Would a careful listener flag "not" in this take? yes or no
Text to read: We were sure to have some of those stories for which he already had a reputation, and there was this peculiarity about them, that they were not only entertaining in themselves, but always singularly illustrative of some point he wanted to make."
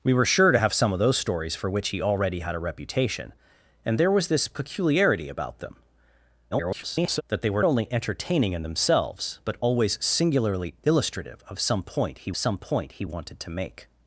yes